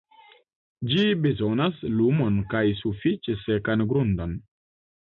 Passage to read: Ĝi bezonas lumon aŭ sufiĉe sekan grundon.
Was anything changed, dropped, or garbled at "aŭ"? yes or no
yes